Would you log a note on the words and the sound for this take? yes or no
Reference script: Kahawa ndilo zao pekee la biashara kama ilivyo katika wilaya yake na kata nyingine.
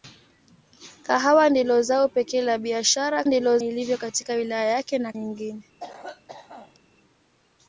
yes